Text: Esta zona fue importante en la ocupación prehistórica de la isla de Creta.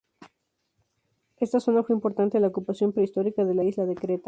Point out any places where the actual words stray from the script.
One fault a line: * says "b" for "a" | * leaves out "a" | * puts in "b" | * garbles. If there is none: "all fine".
all fine